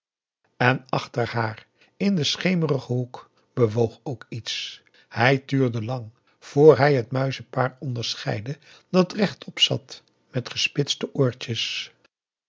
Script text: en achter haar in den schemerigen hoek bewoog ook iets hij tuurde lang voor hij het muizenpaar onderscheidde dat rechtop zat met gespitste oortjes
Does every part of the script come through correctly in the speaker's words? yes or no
yes